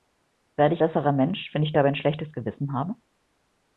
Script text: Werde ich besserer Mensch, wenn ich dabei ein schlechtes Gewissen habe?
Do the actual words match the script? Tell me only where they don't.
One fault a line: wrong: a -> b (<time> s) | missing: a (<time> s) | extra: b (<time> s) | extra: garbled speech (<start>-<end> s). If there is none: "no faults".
no faults